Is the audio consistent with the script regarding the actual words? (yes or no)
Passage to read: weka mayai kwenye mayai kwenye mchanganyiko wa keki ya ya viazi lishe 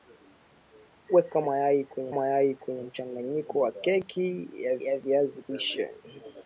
yes